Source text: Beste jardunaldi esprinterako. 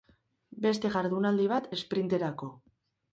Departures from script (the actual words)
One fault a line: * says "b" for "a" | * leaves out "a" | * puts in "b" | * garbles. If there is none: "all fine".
* puts in "bat"